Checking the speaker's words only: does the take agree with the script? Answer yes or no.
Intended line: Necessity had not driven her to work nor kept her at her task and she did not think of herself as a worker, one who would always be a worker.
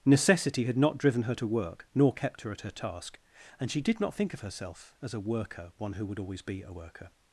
yes